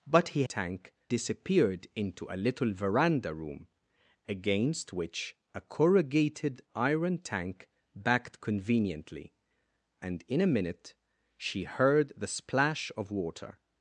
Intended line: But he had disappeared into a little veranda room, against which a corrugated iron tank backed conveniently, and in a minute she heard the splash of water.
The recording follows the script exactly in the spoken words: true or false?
false